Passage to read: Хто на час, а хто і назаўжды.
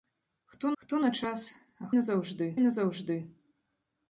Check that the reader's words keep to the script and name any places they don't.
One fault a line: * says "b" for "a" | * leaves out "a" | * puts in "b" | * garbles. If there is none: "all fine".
* puts in "хто"
* says "назаўжды" for "хто"